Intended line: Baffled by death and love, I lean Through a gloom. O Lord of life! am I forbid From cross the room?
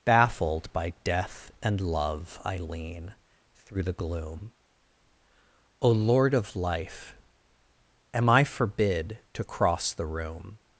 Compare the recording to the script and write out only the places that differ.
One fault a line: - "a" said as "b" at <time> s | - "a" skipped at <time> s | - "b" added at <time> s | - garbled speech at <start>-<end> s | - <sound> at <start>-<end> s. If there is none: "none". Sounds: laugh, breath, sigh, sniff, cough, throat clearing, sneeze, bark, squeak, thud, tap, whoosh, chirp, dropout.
- "a" said as "the" at 3.8 s
- "From" said as "To" at 9.3 s